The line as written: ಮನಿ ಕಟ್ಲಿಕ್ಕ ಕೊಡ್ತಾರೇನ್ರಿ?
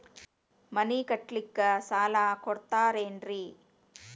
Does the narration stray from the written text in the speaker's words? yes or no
yes